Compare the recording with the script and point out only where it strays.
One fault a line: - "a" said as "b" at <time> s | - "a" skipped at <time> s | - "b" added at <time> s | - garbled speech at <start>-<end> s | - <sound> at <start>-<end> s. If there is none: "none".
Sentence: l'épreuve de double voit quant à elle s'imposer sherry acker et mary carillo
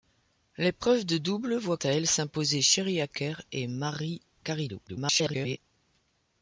- "quant" skipped at 1.8 s
- garbled speech at 4.9-5.6 s